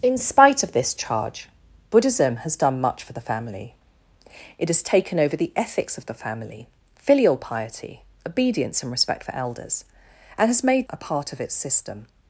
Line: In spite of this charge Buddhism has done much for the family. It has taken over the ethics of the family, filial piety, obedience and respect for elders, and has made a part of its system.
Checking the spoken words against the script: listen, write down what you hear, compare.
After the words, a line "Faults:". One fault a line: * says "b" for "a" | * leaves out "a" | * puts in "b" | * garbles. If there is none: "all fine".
In spite of this charge Buddhism has done much for the family. It has taken over the ethics of the family, filial piety, obedience and respect for elders, and has made a part of its system.
Faults:
all fine